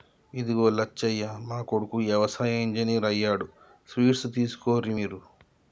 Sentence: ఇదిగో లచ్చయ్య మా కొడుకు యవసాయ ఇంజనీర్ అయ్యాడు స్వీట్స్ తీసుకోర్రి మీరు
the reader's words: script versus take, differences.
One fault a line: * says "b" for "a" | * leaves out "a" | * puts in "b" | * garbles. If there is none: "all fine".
all fine